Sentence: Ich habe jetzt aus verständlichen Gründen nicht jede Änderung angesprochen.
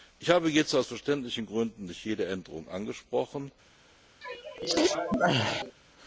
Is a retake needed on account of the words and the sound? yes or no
yes